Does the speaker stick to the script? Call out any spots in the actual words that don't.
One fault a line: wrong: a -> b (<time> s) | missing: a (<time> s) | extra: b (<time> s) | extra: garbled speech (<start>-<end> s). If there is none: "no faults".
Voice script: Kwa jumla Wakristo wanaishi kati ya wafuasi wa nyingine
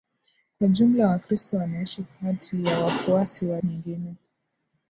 no faults